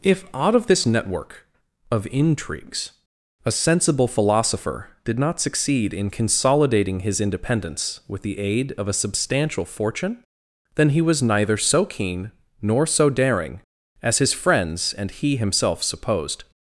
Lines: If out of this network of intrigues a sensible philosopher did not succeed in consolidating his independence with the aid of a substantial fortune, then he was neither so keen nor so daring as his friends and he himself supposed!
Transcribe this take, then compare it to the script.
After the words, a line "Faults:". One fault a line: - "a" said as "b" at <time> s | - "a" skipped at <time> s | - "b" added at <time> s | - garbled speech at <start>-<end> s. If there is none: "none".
If out of this network of intrigues a sensible philosopher did not succeed in consolidating his independence with the aid of a substantial fortune, then he was neither so keen nor so daring as his friends and he himself supposed!
Faults:
none